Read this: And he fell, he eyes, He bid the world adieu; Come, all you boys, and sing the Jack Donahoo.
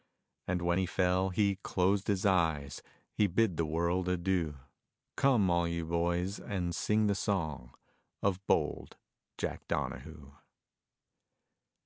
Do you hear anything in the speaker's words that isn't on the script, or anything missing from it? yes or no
yes